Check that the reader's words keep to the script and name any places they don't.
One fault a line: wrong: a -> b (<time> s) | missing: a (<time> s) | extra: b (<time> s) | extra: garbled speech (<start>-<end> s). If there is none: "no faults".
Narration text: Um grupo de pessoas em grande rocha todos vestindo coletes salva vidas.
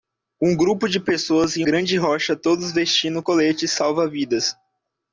no faults